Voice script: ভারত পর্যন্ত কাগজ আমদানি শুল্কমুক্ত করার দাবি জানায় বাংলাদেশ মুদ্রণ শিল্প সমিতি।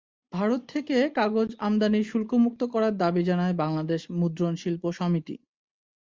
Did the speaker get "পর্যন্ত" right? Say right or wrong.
wrong